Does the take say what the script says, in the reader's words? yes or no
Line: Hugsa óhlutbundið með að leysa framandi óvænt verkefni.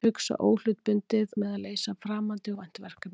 yes